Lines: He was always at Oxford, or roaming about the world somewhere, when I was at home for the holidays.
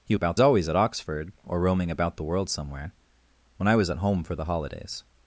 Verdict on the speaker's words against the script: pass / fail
fail